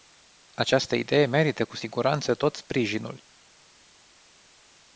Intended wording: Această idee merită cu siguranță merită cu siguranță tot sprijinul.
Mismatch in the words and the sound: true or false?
true